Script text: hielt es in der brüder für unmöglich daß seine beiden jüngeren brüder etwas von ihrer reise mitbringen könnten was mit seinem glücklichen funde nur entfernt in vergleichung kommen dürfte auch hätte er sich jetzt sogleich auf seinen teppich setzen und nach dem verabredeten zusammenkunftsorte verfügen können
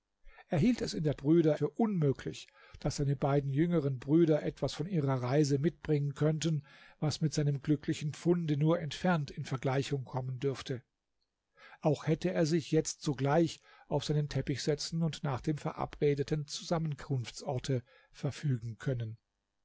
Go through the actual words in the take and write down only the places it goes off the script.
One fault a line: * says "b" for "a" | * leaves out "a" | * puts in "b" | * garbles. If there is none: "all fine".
all fine